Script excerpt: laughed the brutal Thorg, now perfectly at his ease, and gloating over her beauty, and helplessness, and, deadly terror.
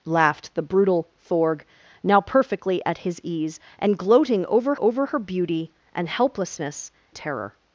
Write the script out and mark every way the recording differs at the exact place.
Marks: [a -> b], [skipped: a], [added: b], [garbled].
laughed the brutal Thorg, now perfectly at his ease, and gloating over [added: over] her beauty, and helplessness, [skipped: and, deadly] terror.